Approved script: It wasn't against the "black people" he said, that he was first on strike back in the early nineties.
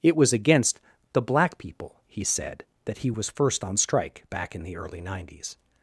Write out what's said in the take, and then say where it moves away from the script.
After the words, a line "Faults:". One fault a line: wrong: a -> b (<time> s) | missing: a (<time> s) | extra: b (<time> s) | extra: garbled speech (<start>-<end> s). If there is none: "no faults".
It was against the "black people" he said, that he was first on strike back in the early nineties.
Faults:
wrong: wasn't -> was (0.1 s)